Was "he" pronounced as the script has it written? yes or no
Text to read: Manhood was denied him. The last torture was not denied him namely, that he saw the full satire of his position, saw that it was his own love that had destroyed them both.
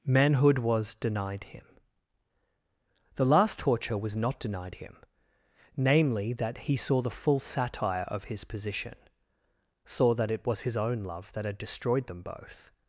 yes